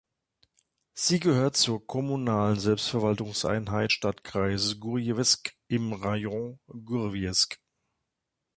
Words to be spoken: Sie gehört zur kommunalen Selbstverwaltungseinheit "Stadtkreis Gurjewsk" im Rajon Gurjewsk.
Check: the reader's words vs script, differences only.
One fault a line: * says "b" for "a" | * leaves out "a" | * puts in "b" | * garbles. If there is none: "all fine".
all fine